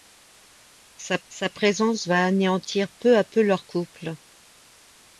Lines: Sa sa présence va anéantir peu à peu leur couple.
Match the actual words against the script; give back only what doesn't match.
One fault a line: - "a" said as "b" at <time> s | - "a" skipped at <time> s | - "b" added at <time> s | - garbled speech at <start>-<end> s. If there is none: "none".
none